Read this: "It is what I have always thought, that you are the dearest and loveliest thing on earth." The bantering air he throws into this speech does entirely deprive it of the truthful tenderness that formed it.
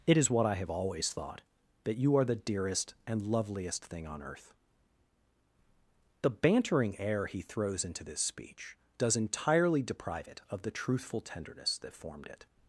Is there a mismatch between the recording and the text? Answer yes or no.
no